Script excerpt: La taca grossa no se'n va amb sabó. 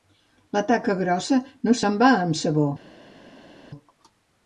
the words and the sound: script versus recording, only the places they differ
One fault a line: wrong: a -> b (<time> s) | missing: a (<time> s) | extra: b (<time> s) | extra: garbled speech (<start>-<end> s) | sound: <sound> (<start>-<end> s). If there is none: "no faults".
no faults